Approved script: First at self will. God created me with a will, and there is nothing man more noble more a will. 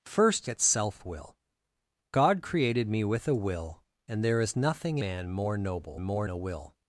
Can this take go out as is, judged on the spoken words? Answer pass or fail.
pass